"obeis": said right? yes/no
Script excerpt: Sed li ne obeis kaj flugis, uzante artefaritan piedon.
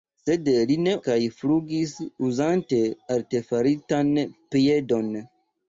no